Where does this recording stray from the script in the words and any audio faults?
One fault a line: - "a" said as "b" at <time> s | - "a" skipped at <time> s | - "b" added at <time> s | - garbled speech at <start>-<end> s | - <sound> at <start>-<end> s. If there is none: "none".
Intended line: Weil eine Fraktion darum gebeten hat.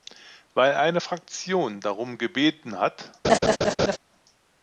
- laugh at 3.2-4.0 s